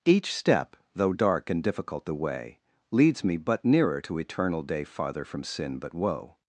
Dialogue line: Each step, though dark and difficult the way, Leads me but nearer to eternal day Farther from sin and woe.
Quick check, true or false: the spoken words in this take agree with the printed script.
false